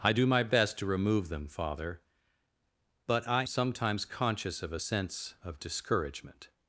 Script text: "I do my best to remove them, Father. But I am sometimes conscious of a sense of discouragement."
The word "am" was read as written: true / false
false